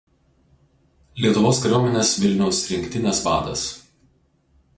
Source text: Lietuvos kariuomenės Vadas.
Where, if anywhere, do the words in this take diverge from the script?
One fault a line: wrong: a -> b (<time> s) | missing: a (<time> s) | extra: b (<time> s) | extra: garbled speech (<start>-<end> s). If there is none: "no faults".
extra: Vilniaus rinktinės (2.2 s)